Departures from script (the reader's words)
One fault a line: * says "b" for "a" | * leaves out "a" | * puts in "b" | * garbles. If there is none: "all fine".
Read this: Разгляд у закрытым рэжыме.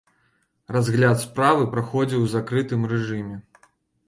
* puts in "справы праходзіў"